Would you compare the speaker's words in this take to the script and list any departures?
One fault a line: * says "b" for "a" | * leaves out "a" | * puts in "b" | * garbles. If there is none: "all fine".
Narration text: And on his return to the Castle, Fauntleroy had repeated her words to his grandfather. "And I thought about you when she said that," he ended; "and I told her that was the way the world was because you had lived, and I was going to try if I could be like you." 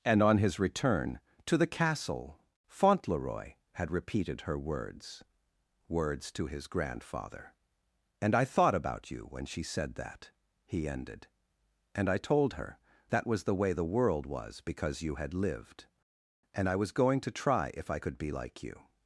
* puts in "words"